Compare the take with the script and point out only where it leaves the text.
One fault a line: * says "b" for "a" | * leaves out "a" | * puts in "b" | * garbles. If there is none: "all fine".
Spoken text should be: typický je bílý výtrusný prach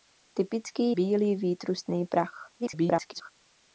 * leaves out "je"
* garbles